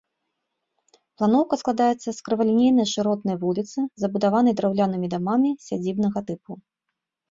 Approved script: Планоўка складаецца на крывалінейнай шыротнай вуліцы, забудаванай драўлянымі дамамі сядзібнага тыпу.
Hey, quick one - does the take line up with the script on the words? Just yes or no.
no